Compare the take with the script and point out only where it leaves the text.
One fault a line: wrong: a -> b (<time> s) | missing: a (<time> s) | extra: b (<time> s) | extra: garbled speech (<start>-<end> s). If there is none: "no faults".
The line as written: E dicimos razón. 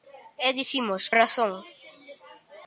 no faults